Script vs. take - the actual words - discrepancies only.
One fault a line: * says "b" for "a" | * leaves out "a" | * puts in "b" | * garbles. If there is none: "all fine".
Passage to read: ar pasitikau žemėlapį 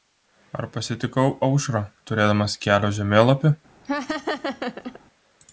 * puts in "aušrą turėdamas kelio"